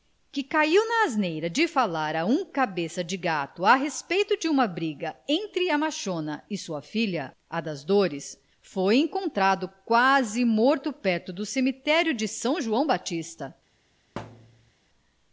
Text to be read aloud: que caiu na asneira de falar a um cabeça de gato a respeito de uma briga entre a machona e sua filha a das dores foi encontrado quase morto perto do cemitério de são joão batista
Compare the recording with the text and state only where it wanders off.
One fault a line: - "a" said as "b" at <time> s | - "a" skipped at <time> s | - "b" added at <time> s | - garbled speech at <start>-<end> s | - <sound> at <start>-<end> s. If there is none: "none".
- thud at 14.2-14.7 s